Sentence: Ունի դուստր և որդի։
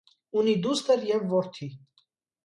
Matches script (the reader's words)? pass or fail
pass